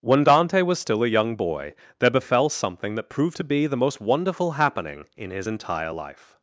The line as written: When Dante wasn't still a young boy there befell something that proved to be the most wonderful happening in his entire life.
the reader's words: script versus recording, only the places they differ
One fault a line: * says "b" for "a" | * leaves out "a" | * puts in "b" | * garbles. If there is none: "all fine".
* says "was" for "wasn't"